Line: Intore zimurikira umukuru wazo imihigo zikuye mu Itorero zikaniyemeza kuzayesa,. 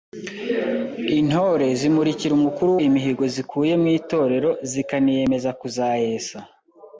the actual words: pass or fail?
fail